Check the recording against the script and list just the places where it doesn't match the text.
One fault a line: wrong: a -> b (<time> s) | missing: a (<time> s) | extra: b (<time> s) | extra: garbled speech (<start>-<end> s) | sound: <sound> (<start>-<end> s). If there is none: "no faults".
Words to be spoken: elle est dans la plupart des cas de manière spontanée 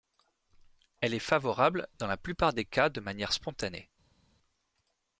extra: favorable (1.2 s)